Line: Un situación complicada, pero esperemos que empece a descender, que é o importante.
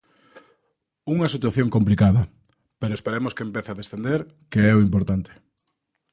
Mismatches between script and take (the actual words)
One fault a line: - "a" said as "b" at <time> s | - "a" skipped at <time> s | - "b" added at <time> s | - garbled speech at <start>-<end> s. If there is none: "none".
- "Un" said as "Unha" at 1.1 s